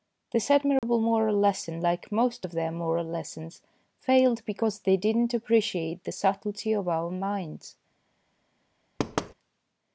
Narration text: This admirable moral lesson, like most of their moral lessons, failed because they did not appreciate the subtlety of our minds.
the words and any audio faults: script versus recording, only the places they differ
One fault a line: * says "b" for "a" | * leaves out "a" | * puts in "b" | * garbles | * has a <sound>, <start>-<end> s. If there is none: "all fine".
* has a dropout, 0.8-0.8 s
* has a thud, 9.0-9.3 s